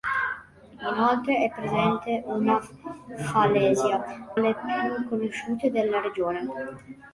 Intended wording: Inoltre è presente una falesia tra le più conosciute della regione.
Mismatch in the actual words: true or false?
true